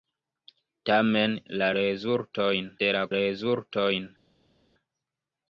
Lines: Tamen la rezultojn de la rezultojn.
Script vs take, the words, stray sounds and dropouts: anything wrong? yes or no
no